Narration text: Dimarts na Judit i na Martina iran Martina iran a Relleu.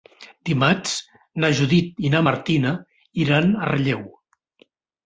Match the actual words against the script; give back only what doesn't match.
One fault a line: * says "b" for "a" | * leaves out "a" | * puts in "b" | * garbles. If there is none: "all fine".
* leaves out "Martina iran"